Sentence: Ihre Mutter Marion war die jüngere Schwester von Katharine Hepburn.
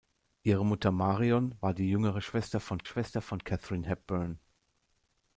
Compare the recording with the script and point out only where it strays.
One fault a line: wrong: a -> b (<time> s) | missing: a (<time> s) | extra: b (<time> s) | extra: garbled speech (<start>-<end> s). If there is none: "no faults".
extra: Schwester von (2.8 s)